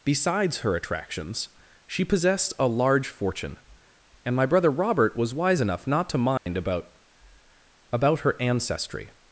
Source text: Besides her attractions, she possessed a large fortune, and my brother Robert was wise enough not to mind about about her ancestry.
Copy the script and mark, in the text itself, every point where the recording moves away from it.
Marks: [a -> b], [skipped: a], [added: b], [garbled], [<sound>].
Besides her attractions, she possessed a large fortune, and my brother Robert was wise enough not to mind [dropout] about about her ancestry.